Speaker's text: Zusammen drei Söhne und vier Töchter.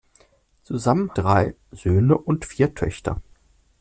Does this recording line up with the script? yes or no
yes